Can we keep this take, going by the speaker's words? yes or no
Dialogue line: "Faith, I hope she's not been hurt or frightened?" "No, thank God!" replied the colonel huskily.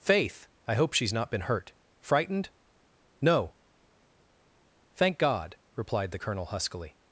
no